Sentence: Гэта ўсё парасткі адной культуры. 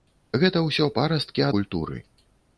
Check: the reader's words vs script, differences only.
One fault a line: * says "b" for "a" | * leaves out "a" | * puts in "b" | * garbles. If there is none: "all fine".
* leaves out "адной"